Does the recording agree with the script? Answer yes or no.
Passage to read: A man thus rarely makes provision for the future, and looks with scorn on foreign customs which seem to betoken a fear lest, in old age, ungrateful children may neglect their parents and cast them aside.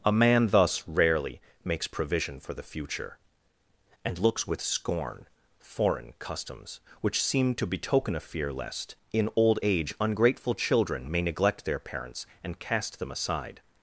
no